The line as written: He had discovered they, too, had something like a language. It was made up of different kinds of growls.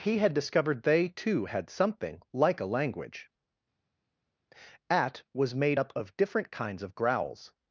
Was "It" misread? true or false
true